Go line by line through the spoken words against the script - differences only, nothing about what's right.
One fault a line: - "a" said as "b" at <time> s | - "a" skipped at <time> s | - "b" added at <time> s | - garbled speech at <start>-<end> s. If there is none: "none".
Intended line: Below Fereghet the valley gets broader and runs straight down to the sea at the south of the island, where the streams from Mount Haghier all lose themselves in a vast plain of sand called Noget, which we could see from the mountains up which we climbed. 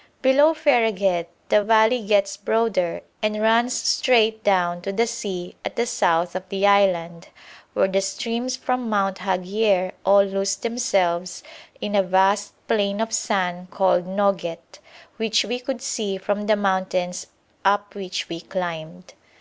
none